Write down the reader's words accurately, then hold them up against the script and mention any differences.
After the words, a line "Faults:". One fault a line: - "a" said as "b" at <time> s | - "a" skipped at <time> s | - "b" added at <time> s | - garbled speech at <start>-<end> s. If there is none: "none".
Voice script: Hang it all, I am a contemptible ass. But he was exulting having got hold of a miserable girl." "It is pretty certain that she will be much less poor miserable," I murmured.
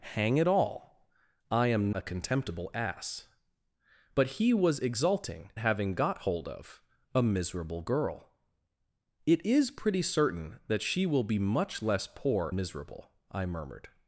Hang it all, I am a contemptible ass. But he was exulting having got hold of a miserable girl." "It is pretty certain that she will be much less poor miserable," I murmured.
Faults:
none